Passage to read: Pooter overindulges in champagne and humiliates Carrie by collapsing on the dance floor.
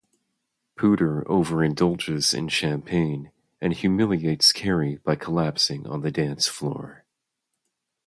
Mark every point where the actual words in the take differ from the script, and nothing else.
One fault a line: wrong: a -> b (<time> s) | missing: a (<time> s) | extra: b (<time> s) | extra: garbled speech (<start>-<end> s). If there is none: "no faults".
no faults